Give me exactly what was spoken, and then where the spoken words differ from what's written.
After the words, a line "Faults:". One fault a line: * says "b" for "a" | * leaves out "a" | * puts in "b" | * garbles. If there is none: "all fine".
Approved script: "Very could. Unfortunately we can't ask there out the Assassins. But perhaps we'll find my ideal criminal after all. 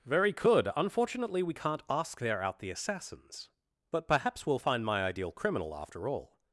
"Very could. Unfortunately we can't ask there out the Assassins. But perhaps we'll find my ideal criminal after all.
Faults:
all fine